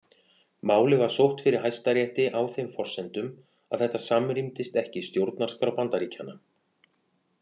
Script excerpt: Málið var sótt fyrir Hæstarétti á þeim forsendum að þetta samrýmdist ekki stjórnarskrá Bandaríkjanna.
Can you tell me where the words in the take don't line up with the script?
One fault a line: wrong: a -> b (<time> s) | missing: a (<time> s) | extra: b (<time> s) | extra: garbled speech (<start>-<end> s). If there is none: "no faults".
no faults